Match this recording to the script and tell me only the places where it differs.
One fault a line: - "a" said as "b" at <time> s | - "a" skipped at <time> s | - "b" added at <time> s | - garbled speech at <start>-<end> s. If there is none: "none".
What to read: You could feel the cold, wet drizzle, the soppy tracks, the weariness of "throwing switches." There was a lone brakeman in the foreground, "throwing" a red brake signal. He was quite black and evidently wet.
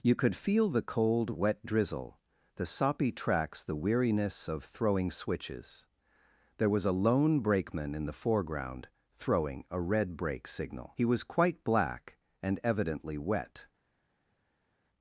none